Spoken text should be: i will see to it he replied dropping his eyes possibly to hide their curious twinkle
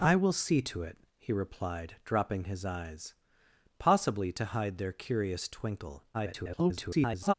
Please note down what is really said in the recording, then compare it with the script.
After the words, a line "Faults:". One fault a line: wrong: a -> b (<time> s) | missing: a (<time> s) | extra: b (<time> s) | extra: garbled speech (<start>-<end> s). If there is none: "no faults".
i will see to it he replied dropping his eyes possibly to hide their curious twinkle [garbled]
Faults:
extra: garbled speech (6.1-7.3 s)